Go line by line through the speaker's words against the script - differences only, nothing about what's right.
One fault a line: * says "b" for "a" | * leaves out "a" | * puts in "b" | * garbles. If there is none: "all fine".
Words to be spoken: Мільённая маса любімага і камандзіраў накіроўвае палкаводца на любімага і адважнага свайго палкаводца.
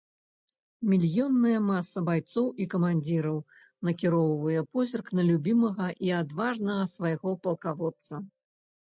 * says "байцоў" for "любімага"
* says "позірк" for "палкаводца"